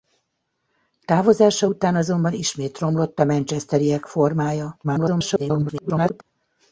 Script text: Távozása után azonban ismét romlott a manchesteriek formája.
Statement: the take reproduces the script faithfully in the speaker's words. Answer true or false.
false